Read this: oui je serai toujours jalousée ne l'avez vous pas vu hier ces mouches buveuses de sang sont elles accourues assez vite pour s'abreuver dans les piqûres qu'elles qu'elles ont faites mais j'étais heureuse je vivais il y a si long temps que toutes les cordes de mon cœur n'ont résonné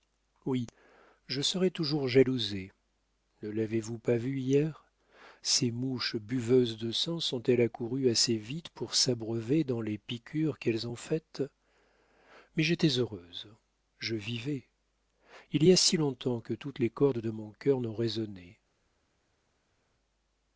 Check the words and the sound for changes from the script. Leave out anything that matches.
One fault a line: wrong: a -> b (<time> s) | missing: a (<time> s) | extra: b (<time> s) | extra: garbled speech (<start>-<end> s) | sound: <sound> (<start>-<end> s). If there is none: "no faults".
missing: qu'elles (10.9 s)